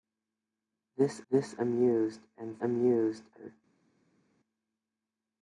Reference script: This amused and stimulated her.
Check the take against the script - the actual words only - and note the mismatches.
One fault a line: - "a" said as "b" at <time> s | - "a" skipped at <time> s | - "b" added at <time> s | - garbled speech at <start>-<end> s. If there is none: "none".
- "this" added at 1.3 s
- "stimulated" said as "amused" at 2.6 s